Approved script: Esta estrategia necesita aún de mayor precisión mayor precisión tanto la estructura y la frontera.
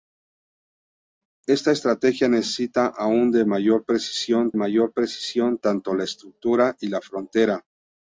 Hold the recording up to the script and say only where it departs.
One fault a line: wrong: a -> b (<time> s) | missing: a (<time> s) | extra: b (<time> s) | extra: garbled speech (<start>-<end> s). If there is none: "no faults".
no faults